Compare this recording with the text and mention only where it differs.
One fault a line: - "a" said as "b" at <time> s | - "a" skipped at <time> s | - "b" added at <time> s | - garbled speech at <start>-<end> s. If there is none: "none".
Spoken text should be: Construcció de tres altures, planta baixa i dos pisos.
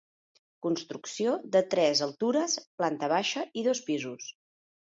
none